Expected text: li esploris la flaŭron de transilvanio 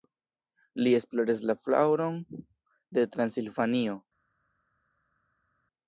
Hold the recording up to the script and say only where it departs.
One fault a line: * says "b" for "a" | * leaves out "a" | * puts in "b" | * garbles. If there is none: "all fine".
all fine